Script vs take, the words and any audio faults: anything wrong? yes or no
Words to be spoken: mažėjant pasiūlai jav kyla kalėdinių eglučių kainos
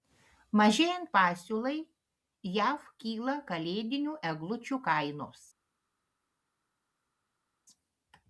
no